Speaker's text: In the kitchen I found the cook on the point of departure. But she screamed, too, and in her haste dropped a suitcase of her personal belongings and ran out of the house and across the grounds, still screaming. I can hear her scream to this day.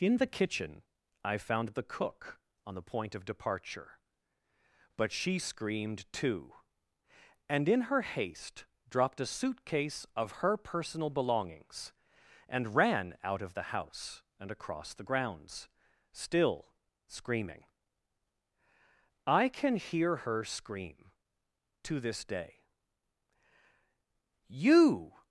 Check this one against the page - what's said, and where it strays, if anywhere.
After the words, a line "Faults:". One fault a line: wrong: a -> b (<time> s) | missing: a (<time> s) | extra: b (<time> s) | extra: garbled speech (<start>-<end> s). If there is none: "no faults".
In the kitchen I found the cook on the point of departure. But she screamed, too, and in her haste dropped a suitcase of her personal belongings and ran out of the house and across the grounds, still screaming. I can hear her scream to this day. You
Faults:
extra: You (24.5 s)